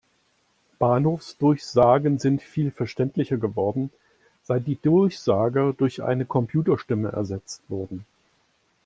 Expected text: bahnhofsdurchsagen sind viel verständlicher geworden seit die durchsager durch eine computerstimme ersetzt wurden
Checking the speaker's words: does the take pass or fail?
pass